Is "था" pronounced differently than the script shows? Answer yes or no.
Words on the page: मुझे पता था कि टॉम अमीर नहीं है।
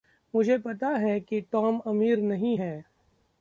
yes